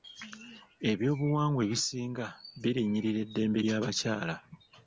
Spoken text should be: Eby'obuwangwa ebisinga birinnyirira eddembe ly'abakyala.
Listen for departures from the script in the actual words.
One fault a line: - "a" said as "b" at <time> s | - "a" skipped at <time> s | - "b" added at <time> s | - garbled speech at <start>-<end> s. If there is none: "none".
none